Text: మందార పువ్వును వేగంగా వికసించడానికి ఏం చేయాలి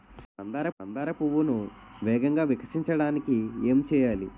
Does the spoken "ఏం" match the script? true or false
true